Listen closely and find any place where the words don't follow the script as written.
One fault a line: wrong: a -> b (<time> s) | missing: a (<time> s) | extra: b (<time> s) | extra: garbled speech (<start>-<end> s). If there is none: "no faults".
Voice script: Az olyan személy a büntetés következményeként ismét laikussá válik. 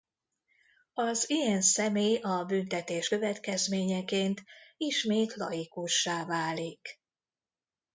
wrong: olyan -> ilyen (1.3 s)